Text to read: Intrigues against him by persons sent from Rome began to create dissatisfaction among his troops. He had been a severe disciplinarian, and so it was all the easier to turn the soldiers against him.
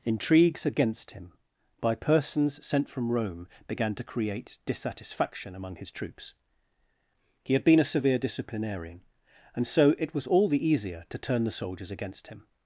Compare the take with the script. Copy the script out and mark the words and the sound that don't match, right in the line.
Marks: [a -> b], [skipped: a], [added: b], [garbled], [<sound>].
Intrigues against him by persons sent from Rome began to create dissatisfaction among his troops. He had been a severe disciplinarian, and so it was all the easier to turn the soldiers against him.